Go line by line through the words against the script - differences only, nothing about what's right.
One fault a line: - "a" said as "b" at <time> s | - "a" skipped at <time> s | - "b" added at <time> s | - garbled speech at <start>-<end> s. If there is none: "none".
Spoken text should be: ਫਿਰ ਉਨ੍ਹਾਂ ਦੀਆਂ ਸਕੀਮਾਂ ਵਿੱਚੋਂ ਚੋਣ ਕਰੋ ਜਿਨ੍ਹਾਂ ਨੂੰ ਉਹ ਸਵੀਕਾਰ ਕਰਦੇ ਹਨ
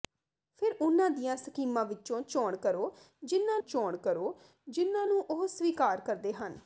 - "ਚੋਣ ਕਰੋ ਜਿਨ੍ਹਾਂ" added at 3.6 s